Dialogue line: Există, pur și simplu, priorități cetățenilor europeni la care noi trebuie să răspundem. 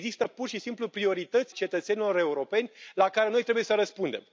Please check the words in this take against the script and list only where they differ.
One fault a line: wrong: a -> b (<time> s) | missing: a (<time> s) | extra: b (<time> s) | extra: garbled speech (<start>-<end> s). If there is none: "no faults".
no faults